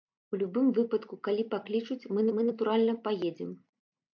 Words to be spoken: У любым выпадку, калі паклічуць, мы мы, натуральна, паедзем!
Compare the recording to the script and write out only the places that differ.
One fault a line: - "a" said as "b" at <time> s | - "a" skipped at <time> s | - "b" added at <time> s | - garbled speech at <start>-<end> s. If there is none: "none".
none